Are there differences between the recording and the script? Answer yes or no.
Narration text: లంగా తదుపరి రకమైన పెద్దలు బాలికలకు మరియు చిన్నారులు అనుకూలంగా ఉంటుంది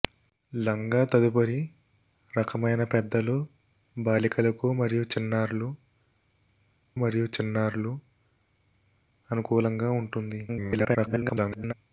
yes